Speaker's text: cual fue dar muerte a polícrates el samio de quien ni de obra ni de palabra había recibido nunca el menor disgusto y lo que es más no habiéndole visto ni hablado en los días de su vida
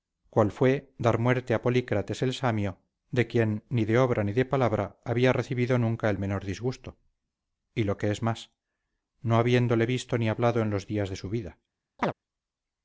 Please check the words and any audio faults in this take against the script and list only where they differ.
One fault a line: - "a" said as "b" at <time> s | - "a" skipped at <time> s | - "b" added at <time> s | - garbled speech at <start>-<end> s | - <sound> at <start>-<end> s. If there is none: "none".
- chirp at 12.0-12.1 s